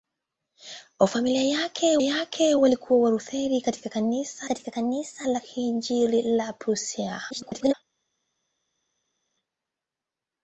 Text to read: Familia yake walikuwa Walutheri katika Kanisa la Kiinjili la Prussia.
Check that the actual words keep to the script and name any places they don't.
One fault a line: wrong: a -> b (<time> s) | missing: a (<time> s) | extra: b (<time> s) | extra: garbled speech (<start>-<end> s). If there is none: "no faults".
extra: yake (2.0 s)
extra: katika Kanisa (4.4 s)
extra: garbled speech (7.3-7.7 s)